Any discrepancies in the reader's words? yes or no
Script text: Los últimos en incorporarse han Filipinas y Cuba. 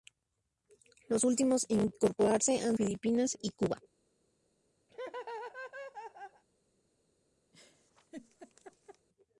no